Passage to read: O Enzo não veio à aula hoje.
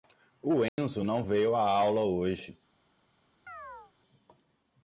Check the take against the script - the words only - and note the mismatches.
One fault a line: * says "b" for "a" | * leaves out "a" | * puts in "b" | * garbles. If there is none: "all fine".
all fine